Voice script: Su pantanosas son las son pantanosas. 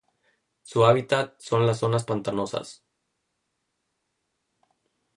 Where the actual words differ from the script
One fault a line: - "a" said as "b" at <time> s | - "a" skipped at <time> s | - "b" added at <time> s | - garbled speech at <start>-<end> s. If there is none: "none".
- "pantanosas" said as "hábitat" at 0.8 s
- "son" said as "zonas" at 1.8 s